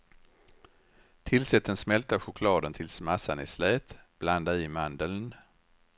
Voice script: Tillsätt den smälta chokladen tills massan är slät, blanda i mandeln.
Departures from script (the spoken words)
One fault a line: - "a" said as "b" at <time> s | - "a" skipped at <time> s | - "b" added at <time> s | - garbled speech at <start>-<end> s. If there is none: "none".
none